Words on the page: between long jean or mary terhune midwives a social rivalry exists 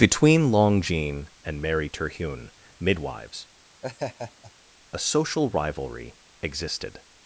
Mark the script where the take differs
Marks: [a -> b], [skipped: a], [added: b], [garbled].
between long jean [or -> and] mary terhune midwives a social rivalry [exists -> existed]